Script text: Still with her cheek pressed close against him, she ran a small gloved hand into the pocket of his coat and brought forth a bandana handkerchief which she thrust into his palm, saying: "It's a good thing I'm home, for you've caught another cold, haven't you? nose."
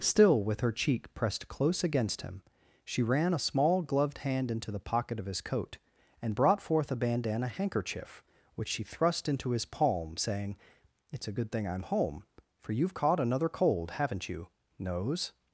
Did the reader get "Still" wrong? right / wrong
right